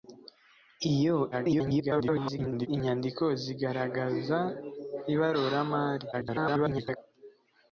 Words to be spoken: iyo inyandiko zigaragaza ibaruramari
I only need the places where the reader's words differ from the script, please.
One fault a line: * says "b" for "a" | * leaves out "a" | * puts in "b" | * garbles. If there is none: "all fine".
* garbles
* garbles